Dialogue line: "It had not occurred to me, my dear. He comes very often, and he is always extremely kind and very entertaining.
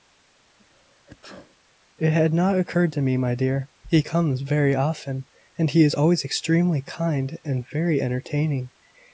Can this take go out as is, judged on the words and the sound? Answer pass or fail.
fail